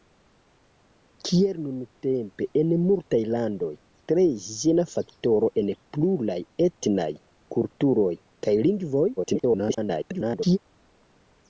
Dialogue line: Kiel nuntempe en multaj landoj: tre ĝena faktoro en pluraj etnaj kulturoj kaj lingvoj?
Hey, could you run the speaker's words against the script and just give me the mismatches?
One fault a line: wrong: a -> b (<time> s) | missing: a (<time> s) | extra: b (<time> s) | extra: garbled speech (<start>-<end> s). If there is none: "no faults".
extra: garbled speech (9.2-10.6 s)